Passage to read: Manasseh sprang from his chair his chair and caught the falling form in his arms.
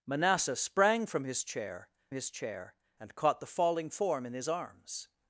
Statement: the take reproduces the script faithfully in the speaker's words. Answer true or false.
true